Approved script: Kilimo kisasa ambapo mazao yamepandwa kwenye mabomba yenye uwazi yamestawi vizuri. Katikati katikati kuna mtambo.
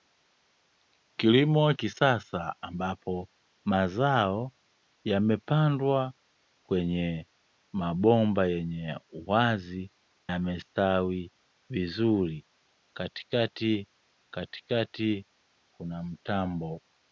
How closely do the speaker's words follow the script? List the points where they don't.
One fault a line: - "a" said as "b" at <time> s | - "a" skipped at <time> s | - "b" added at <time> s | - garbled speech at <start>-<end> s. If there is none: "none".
none